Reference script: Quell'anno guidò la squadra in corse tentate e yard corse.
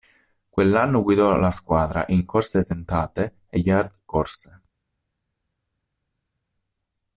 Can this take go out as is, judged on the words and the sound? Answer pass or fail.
pass